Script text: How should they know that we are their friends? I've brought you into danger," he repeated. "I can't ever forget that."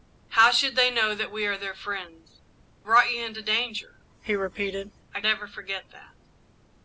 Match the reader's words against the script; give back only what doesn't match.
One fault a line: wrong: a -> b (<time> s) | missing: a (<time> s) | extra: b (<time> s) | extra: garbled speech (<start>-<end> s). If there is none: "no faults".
missing: I've (2.4 s)
missing: can't (5.2 s)